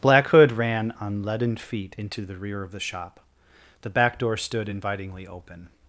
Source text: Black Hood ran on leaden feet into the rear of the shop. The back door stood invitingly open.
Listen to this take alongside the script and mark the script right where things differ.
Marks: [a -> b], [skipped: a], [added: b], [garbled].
Black Hood ran on leaden feet into the rear of the shop. The back door stood invitingly open.